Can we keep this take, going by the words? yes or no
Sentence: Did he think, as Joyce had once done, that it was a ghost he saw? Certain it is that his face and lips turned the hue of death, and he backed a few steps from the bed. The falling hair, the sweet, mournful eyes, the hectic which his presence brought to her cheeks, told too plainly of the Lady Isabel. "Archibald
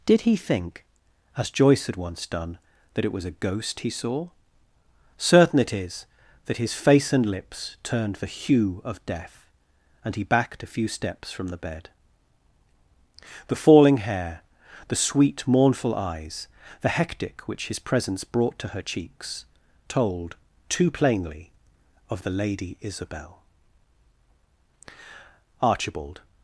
yes